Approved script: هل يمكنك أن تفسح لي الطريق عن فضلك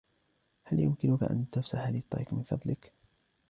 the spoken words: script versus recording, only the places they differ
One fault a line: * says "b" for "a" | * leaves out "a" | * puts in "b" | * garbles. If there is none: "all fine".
* says "من" for "عن"